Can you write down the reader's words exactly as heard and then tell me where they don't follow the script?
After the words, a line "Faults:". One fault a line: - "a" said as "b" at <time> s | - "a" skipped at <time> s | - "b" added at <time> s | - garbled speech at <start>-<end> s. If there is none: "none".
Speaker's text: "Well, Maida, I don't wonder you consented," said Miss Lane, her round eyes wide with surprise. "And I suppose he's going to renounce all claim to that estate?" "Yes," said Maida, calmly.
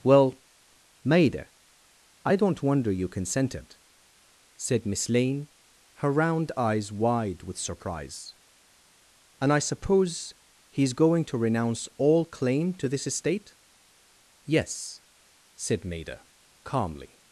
"Well, Maida, I don't wonder you consented," said Miss Lane, her round eyes wide with surprise. "And I suppose he's going to renounce all claim to this estate?" "Yes," said Maida, calmly.
Faults:
- "that" said as "this" at 12.9 s